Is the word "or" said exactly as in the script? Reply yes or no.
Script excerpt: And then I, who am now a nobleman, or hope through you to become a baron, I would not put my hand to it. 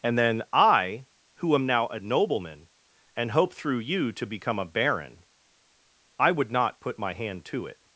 no